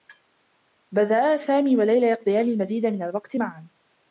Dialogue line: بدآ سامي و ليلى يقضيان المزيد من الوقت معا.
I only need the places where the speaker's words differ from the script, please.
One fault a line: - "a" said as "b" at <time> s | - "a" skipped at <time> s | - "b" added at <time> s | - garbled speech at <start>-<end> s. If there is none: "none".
none